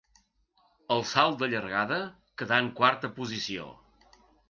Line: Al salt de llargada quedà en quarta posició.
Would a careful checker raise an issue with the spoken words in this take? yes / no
no